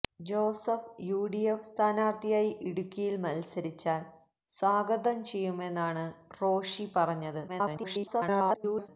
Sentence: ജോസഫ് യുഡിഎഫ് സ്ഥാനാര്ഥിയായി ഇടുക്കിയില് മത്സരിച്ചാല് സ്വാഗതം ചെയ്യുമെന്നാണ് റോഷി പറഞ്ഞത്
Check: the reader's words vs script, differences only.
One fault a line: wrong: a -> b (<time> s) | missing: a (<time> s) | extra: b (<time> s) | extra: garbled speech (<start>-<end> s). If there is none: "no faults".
extra: garbled speech (7.5-8.9 s)